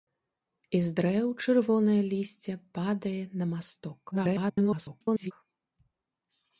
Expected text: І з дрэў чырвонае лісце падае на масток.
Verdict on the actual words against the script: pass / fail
fail